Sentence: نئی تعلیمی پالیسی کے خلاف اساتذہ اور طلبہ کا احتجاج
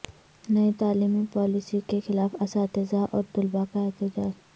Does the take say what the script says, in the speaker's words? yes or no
yes